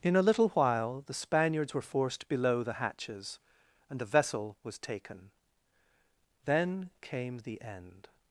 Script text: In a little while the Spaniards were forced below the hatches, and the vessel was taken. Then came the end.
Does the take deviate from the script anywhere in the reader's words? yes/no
no